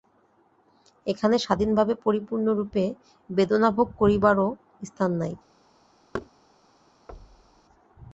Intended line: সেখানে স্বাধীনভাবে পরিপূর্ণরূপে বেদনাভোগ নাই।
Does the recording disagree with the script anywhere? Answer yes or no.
yes